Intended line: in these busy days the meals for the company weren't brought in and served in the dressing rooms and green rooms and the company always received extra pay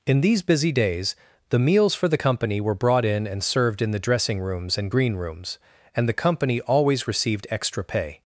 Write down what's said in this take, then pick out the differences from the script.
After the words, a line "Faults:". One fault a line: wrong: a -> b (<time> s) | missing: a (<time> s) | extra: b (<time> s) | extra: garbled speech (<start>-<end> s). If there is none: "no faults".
in these busy days the meals for the company were brought in and served in the dressing rooms and green rooms and the company always received extra pay
Faults:
wrong: weren't -> were (2.6 s)